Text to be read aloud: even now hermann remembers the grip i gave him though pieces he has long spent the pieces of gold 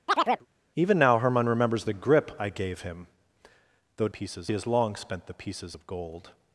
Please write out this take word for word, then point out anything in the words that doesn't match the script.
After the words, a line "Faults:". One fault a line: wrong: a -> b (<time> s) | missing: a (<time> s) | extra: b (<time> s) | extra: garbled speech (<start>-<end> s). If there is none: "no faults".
even now hermann remembers the grip i gave him though pieces he has long spent the pieces of gold
Faults:
no faults